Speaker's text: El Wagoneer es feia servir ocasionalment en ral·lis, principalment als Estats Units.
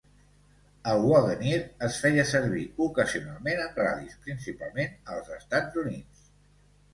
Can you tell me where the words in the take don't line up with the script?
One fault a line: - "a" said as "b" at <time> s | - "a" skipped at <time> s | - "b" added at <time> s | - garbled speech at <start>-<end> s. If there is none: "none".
none